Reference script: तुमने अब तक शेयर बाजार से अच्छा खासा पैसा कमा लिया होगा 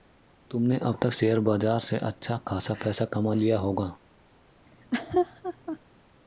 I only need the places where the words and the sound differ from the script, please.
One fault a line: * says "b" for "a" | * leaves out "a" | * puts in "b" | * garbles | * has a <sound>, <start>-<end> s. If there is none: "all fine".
* has a laugh, 4.7-5.8 s